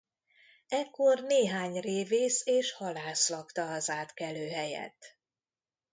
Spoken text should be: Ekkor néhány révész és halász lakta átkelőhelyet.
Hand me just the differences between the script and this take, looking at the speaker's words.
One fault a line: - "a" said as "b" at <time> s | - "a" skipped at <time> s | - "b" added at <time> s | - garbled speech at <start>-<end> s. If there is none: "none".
- "az" added at 3.7 s